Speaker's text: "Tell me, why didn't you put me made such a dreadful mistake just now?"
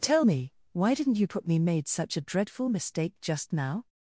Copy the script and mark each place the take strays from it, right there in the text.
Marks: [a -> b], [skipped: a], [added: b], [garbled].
"Tell me, why didn't you put me made such a dreadful mistake just now?"